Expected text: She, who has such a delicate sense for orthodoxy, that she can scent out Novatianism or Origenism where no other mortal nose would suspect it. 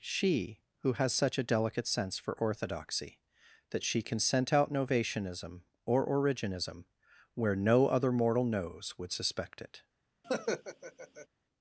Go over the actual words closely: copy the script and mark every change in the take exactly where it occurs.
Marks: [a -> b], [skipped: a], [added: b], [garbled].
She, who has such a delicate sense for orthodoxy, that she can scent out Novatianism or Origenism where no other mortal nose would suspect it.